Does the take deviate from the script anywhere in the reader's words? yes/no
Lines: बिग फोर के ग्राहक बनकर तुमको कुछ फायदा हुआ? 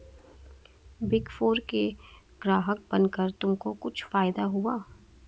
no